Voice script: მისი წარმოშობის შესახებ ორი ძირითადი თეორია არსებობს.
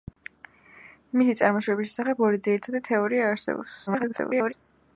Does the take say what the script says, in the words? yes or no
no